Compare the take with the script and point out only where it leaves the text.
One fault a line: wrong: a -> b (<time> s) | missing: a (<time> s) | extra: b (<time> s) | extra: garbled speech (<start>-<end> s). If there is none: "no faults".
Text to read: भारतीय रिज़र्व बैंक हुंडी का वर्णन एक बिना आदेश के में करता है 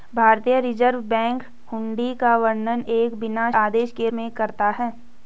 no faults